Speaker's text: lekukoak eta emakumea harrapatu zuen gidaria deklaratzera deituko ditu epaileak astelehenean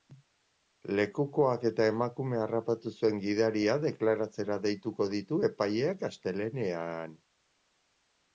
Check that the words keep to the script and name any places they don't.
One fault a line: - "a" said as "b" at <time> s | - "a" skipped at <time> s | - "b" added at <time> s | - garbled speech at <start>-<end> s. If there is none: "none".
none